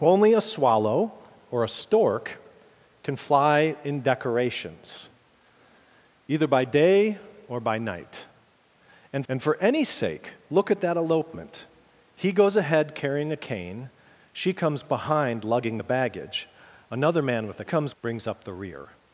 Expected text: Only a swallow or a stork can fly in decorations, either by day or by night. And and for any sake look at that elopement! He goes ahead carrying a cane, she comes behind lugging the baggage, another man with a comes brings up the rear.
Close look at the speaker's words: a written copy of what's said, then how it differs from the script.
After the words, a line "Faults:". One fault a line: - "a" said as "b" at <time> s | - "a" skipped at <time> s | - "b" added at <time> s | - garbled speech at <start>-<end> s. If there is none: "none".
Only a swallow or a stork can fly in decorations, either by day or by night. And and for any sake look at that elopement! He goes ahead carrying a cane, she comes behind lugging the baggage, another man with a comes brings up the rear.
Faults:
none